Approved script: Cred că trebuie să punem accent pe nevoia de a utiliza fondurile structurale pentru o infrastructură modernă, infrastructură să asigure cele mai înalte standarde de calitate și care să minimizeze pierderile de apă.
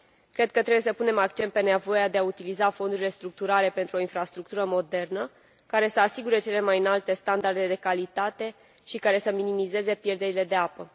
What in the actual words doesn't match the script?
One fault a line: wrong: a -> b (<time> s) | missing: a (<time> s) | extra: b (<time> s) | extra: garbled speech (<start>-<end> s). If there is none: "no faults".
wrong: infrastructură -> care (5.7 s)